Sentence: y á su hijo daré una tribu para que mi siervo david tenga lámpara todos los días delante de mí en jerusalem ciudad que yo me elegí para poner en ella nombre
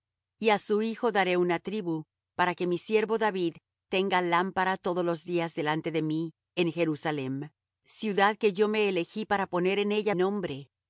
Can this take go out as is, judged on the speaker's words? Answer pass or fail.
pass